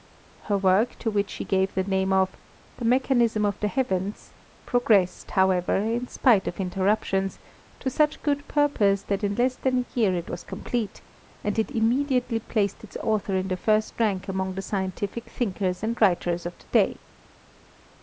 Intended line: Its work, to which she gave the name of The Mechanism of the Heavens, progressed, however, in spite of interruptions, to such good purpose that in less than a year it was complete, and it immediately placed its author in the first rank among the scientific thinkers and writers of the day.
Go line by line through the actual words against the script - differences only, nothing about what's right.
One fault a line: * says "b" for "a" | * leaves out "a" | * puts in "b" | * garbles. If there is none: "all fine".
* says "Her" for "Its"